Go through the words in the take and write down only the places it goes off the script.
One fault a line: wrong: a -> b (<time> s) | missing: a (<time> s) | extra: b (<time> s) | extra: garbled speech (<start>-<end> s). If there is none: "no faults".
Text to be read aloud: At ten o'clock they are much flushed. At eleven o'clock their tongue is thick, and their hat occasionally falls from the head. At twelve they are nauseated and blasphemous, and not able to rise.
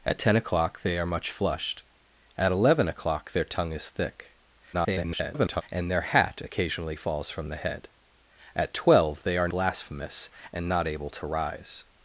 extra: garbled speech (4.7-5.6 s)
missing: nauseated and (9.5 s)